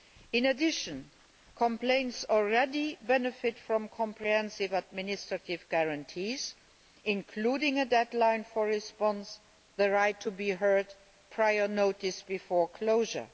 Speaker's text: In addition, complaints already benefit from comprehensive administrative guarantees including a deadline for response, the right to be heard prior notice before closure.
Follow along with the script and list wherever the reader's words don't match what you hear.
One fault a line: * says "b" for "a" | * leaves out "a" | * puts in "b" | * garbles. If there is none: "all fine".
all fine